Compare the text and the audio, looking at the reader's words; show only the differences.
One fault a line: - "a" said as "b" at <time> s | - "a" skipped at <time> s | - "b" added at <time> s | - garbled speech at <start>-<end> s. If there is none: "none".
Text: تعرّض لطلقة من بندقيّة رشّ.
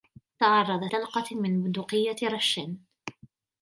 none